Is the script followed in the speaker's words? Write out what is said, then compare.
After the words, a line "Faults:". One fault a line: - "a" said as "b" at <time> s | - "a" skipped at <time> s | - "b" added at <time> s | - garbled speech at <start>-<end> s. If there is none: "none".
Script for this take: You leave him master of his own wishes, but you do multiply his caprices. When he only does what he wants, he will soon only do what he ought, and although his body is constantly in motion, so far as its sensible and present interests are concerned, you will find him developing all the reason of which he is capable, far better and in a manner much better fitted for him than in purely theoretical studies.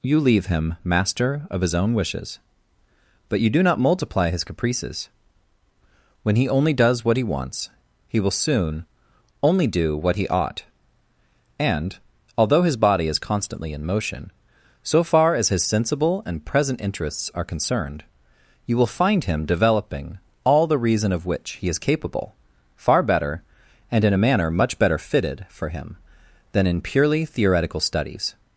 You leave him master of his own wishes, but you do not multiply his caprices. When he only does what he wants, he will soon only do what he ought, and although his body is constantly in motion, so far as his sensible and present interests are concerned, you will find him developing all the reason of which he is capable, far better and in a manner much better fitted for him than in purely theoretical studies.
Faults:
- "not" added at 3.6 s
- "its" said as "his" at 15.5 s